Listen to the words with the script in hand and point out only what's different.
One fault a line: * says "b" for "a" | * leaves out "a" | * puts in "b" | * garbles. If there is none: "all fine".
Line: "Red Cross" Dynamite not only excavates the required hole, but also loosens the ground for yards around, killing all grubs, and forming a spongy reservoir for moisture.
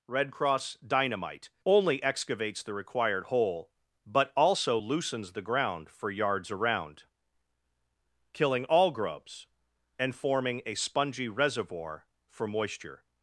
* leaves out "not"